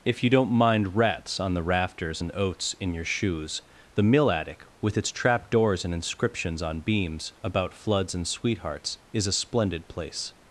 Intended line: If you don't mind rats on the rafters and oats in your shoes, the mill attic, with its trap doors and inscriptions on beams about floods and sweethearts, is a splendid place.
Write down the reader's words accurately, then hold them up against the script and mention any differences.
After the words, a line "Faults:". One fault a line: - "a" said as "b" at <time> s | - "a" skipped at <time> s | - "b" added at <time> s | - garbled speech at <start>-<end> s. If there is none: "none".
If you don't mind rats on the rafters and oats in your shoes, the mill attic, with its trap doors and inscriptions on beams about floods and sweethearts, is a splendid place.
Faults:
none